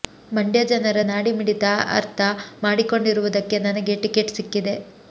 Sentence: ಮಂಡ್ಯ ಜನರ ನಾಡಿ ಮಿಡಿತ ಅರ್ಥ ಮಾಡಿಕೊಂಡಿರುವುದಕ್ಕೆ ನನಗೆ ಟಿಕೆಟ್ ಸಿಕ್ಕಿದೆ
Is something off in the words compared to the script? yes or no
no